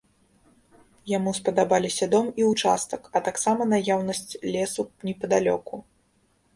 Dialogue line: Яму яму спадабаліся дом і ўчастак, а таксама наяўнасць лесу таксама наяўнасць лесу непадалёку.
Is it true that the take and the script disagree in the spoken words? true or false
true